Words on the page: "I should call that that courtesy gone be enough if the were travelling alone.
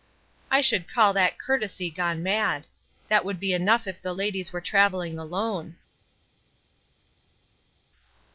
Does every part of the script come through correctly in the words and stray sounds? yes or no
no